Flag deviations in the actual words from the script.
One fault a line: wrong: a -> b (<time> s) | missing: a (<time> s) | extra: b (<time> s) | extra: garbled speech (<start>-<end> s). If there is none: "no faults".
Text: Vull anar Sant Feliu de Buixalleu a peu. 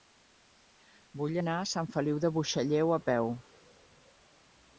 extra: a (1.6 s)